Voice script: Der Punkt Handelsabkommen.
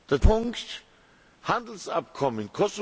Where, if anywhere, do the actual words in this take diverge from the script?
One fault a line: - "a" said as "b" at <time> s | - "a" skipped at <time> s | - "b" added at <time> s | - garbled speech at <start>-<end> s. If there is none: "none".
none